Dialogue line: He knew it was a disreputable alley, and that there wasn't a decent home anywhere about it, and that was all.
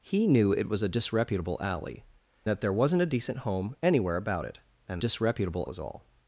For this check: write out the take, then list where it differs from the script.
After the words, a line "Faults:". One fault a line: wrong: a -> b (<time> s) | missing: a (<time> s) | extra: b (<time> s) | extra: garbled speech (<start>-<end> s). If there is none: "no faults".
He knew it was a disreputable alley, that there wasn't a decent home anywhere about it, and disreputable was all.
Faults:
missing: and (2.0 s)
wrong: that -> disreputable (5.0 s)